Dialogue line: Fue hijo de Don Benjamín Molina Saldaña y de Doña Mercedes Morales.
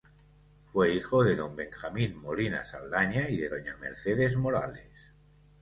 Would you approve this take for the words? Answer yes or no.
yes